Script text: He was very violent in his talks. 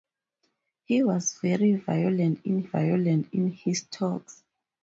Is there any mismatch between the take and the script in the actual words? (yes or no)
yes